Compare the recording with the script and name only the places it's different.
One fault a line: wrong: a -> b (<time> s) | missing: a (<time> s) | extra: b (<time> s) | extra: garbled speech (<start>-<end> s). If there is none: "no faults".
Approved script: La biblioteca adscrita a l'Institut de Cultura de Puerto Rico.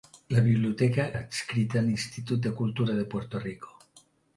no faults